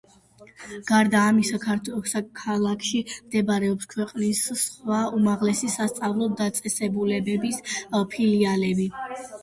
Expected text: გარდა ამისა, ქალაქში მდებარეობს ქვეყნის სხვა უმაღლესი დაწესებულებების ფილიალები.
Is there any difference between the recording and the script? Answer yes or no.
yes